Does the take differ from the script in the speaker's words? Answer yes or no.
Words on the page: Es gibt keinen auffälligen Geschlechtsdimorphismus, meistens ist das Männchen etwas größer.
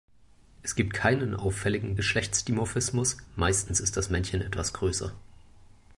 no